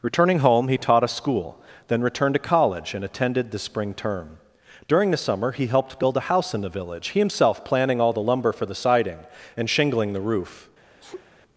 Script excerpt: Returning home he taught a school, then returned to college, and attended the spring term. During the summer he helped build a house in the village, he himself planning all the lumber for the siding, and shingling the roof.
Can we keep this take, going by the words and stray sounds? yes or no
no